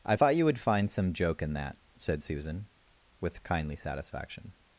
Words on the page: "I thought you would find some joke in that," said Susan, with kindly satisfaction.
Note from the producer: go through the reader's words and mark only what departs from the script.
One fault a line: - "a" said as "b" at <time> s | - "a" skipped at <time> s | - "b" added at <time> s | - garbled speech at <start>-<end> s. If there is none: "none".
none